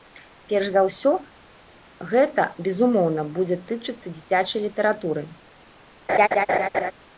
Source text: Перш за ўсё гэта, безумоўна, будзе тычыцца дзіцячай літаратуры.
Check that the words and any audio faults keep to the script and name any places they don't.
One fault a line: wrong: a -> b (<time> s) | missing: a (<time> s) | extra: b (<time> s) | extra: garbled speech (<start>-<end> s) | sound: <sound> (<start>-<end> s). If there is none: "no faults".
sound: laugh (6.1-6.9 s)